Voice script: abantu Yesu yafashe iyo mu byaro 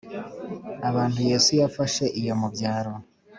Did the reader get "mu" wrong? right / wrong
right